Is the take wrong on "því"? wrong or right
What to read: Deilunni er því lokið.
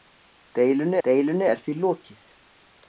right